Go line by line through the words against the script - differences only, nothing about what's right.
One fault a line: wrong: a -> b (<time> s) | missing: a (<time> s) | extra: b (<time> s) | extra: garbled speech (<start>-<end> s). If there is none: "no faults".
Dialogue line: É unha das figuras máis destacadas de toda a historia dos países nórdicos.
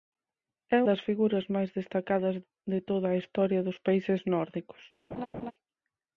missing: unha (0.8 s)